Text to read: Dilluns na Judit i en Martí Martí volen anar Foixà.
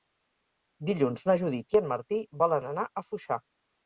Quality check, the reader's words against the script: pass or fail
fail